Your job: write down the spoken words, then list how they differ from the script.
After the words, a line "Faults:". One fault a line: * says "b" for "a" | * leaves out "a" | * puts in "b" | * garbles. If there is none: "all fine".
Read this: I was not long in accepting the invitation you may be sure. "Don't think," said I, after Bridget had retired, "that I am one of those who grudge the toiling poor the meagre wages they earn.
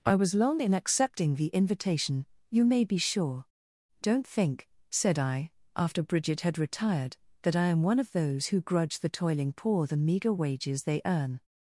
I was long in accepting the invitation you may be sure. "Don't think," said I, after Bridget had retired, "that I am one of those who grudge the toiling poor the meagre wages they earn.
Faults:
* leaves out "not"